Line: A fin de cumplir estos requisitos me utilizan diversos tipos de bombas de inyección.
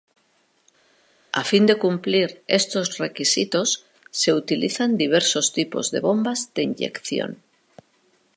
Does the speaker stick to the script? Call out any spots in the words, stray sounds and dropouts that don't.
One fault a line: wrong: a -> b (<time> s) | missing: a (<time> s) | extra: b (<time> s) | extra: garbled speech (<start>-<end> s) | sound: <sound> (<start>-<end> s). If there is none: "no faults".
wrong: me -> se (4.1 s)